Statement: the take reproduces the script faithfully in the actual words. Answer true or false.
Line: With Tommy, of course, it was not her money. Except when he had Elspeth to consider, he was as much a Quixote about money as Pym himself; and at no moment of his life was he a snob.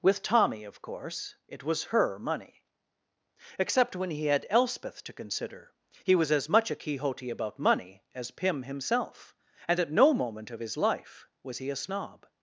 false